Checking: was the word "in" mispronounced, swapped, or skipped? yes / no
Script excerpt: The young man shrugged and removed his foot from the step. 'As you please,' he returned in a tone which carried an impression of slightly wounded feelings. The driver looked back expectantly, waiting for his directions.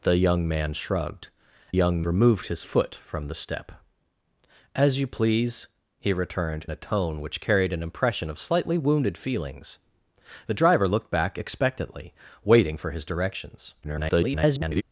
yes